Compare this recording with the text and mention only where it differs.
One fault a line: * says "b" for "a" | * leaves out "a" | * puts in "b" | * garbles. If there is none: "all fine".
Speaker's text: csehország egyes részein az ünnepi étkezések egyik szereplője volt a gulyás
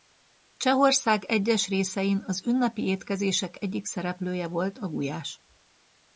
all fine